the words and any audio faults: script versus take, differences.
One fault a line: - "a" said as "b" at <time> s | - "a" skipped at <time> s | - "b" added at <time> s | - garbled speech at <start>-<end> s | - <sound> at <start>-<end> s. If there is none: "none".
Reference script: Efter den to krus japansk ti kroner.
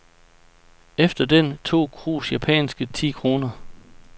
none